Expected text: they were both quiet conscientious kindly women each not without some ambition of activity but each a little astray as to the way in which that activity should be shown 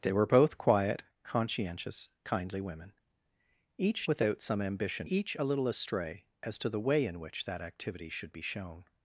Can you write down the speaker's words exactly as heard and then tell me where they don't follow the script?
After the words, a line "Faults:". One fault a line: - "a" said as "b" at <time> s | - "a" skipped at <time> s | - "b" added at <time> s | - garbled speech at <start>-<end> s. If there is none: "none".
they were both quiet conscientious kindly women each without some ambition each a little astray as to the way in which that activity should be shown
Faults:
- "not" skipped at 4.1 s
- "of activity but" skipped at 5.1 s